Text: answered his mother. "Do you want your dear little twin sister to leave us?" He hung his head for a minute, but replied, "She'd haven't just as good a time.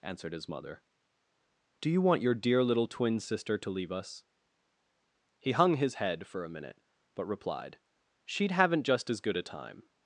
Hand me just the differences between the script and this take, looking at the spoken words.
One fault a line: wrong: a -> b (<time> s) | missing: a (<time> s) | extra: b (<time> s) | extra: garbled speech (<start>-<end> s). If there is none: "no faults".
no faults